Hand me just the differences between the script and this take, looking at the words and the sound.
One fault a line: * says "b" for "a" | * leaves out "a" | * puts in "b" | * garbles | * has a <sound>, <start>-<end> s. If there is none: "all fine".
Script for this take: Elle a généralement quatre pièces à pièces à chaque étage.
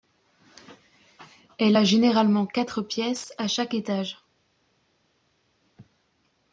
* leaves out "pièces à"